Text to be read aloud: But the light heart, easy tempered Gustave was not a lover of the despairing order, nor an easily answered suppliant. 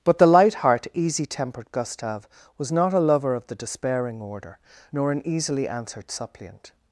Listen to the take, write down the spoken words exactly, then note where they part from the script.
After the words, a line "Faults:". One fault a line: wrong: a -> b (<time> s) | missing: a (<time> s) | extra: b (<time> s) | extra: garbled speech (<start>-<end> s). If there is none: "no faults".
But the light heart, easy tempered Gustave was not a lover of the despairing order, nor an easily answered suppliant.
Faults:
no faults